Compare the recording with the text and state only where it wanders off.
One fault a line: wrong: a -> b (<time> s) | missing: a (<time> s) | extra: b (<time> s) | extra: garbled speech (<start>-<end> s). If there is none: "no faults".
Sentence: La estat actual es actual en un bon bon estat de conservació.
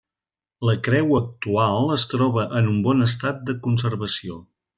wrong: estat -> creu (0.9 s)
wrong: actual -> troba (2.1 s)
missing: bon (3.1 s)